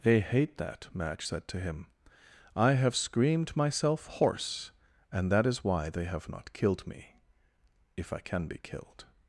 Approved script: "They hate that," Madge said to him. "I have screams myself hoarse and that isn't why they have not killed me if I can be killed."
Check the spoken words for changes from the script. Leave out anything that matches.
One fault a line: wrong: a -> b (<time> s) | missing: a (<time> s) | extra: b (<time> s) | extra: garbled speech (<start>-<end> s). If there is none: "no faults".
wrong: screams -> screamed (3.0 s)
wrong: isn't -> is (5.5 s)